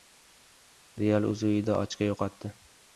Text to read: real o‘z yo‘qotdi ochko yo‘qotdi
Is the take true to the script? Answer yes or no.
no